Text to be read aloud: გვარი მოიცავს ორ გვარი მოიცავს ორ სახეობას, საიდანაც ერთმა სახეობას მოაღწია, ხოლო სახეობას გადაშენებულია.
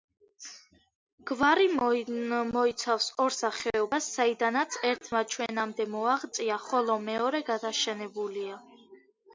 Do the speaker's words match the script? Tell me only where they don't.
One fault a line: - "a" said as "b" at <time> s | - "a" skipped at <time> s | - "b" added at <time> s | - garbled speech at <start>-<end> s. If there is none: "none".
- "გვარი მოიცავს ორ" skipped at 3.4 s
- "სახეობას" said as "ჩვენამდე" at 5.3 s
- "სახეობას" said as "მეორე" at 7.1 s